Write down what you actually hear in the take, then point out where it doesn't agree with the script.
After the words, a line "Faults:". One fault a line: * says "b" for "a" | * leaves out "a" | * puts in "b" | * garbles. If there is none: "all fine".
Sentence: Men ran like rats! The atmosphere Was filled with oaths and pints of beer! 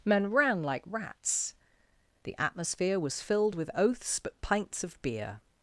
Men ran like rats! The atmosphere Was filled with oaths but pints of beer!
Faults:
* says "but" for "and"